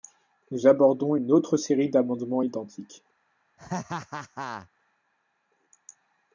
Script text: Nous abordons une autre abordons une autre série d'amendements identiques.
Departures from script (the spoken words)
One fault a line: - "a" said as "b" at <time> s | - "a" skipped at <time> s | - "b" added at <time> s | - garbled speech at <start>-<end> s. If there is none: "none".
- "abordons une autre" skipped at 1.6 s